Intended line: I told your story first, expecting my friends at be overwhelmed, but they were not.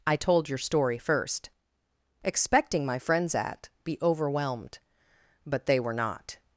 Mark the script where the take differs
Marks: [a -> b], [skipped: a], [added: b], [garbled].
I told your story first, expecting my friends at be overwhelmed, but they were not.